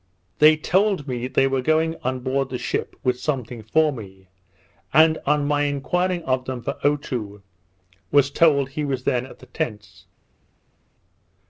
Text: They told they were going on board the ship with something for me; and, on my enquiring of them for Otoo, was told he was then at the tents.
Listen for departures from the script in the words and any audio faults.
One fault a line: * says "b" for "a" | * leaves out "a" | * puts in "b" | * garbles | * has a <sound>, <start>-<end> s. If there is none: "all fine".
* puts in "me"